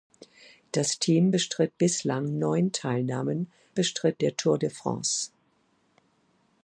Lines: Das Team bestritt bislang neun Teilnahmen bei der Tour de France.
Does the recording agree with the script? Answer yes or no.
no